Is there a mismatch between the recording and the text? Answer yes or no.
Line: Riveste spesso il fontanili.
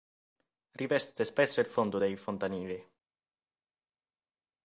yes